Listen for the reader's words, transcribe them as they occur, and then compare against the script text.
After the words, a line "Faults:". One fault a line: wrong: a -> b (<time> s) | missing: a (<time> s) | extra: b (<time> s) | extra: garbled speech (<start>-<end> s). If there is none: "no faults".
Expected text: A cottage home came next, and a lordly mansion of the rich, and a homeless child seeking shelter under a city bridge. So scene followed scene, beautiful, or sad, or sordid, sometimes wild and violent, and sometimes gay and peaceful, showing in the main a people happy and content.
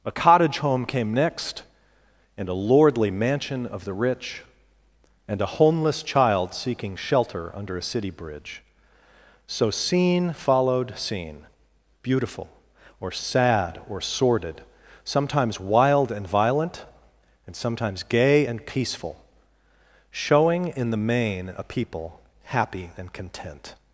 A cottage home came next, and a lordly mansion of the rich, and a homeless child seeking shelter under a city bridge. So scene followed scene, beautiful, or sad, or sordid, sometimes wild and violent, and sometimes gay and peaceful, showing in the main a people happy and content.
Faults:
no faults